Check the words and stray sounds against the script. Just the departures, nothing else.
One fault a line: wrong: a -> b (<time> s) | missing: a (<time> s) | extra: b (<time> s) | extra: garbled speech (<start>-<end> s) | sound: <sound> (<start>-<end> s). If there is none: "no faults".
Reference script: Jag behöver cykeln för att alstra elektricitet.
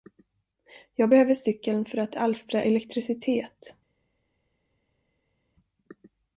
no faults